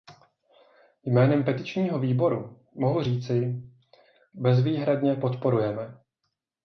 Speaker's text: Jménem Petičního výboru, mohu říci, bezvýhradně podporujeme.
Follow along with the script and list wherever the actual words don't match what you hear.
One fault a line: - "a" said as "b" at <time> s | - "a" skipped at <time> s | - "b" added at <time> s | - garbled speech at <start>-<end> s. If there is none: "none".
none